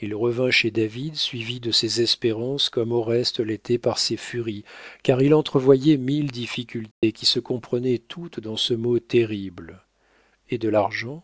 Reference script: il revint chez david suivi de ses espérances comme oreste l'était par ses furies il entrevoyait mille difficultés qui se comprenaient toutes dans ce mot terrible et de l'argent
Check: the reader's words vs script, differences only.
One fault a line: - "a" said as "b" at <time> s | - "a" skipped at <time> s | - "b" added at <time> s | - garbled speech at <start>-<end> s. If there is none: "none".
- "car" added at 5.0 s